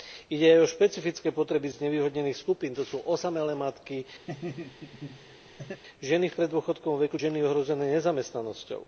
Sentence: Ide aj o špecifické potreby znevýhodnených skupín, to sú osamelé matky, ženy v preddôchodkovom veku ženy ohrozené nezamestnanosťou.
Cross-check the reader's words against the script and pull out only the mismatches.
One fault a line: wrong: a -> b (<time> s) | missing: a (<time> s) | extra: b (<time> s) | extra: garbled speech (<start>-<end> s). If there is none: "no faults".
no faults